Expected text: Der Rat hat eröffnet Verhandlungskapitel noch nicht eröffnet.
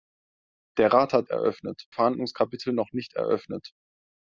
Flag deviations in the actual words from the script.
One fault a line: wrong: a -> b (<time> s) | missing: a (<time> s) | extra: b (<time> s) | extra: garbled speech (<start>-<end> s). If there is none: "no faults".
no faults